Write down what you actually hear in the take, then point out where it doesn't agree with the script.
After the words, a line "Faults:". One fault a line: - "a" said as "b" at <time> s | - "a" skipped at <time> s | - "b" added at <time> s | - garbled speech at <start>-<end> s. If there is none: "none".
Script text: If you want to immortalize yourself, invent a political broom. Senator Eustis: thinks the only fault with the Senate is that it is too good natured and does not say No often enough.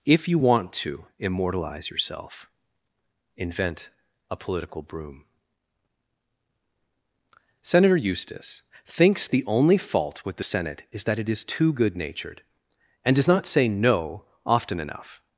If you want to immortalize yourself, invent a political broom. Senator Eustis: thinks the only fault with the Senate is that it is too good natured and does not say No often enough.
Faults:
none